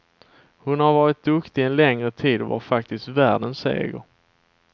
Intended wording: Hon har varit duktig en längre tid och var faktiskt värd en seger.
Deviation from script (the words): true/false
false